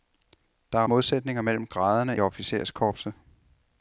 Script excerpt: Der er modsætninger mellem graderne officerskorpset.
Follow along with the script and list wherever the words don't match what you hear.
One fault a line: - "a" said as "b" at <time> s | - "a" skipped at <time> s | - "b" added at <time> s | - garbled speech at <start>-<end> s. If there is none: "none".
none